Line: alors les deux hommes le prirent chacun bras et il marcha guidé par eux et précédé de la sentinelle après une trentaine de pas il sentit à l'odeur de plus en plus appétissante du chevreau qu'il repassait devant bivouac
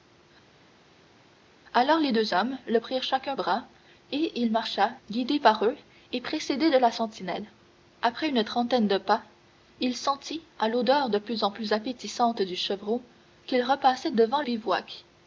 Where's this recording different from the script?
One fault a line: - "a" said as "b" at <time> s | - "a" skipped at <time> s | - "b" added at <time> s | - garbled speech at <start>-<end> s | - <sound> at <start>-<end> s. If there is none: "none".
none